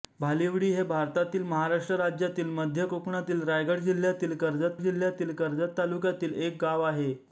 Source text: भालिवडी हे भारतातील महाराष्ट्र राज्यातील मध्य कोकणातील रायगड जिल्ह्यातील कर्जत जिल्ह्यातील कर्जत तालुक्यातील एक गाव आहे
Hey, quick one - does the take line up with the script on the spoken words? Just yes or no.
yes